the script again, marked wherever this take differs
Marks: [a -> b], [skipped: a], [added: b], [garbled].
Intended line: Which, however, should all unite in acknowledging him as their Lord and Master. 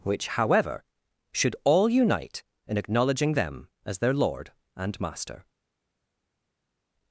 Which, however, should all unite in acknowledging [him -> them] as their Lord and Master.